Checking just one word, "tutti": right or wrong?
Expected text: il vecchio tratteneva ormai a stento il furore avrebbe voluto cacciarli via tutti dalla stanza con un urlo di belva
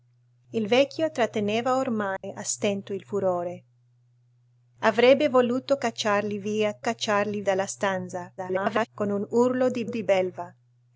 wrong